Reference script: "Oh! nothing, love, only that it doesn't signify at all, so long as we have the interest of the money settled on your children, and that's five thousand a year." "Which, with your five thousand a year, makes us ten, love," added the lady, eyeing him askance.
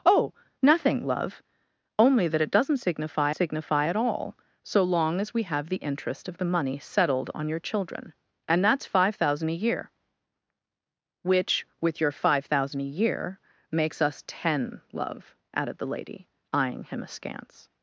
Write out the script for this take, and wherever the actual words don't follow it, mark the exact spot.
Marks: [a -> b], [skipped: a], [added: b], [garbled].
"Oh! nothing, love, only that it doesn't signify [added: signify] at all, so long as we have the interest of the money settled on your children, and that's five thousand a year." "Which, with your five thousand a year, makes us ten, love," added the lady, eyeing him askance.